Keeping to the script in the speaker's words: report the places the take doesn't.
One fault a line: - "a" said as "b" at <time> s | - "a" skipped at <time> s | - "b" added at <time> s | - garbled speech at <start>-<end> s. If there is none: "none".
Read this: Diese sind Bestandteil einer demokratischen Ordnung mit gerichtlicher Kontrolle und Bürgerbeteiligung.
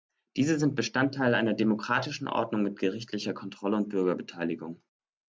none